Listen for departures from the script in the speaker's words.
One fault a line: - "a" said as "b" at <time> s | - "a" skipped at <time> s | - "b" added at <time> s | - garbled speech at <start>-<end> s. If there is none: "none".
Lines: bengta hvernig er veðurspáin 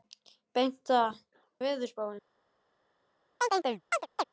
- "hvernig" skipped at 1.0 s